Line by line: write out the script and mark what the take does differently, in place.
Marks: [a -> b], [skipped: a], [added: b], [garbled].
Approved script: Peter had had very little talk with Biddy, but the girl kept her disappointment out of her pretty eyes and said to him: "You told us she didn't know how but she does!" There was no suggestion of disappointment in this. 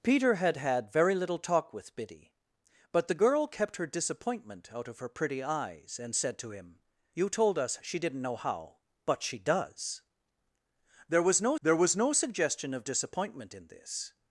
Peter had had very little talk with Biddy, but the girl kept her disappointment out of her pretty eyes and said to him: "You told us she didn't know how but she does!" There was no [added: there was no] suggestion of disappointment in this.